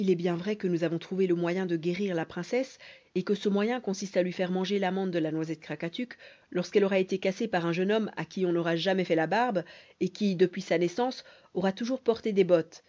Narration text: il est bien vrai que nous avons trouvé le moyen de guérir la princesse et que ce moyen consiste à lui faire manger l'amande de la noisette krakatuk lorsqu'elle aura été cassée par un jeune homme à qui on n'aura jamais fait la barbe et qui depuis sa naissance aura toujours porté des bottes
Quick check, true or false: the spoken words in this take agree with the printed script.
true